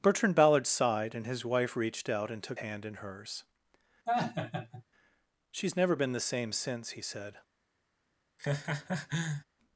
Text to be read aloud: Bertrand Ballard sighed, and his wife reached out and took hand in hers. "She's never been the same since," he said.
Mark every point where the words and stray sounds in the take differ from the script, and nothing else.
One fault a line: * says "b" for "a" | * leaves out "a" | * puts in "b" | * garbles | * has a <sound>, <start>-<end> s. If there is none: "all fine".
* has a laugh, 4.1-4.8 s
* has a laugh, 8.4-9.4 s